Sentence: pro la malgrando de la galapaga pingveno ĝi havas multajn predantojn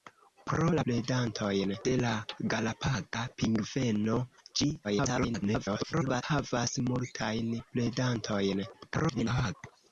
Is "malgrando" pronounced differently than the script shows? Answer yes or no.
yes